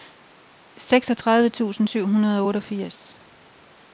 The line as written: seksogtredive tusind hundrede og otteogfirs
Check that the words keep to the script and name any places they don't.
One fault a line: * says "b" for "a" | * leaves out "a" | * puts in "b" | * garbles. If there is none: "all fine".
* puts in "syv"